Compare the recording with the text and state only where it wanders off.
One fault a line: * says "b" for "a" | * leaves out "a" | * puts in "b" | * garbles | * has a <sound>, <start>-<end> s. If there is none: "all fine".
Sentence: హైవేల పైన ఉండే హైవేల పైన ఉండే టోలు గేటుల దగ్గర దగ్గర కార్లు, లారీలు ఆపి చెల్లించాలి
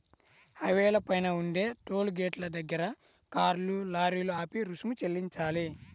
* leaves out "హైవేల పైన ఉండే"
* leaves out "దగ్గర"
* puts in "రుసుము"